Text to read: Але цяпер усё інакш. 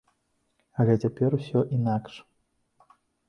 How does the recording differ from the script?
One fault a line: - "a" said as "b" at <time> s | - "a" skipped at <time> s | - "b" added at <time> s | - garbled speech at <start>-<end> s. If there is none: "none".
none